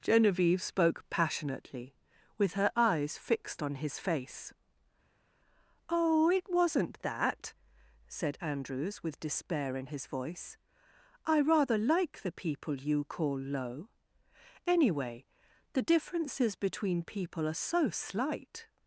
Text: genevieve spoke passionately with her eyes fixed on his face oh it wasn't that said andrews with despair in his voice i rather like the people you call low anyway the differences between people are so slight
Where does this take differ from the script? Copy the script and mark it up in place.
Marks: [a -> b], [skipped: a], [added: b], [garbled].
genevieve spoke passionately with her eyes fixed on his face oh it wasn't that said andrews with despair in his voice i rather like the people you call low anyway the differences between people are so slight